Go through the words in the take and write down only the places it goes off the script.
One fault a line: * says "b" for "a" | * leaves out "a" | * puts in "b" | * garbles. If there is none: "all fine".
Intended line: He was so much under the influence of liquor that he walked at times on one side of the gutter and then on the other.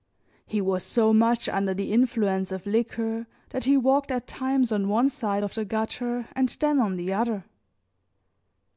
all fine